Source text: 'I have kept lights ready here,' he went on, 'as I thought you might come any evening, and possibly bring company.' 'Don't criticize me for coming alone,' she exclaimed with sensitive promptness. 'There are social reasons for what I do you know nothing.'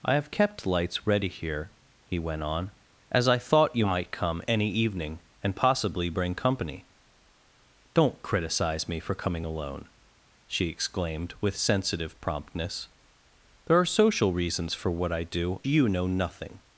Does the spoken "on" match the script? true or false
true